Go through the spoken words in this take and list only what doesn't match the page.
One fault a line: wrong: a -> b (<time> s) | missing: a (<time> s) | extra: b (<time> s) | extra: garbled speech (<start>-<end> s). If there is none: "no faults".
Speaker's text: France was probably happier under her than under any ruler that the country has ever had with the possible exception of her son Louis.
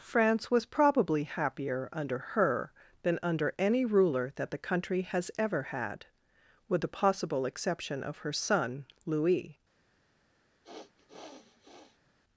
no faults